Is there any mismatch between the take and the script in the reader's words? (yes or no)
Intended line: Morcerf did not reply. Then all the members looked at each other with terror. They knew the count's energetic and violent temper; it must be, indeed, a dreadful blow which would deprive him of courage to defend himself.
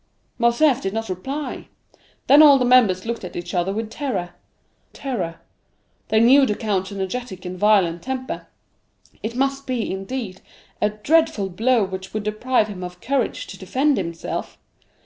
yes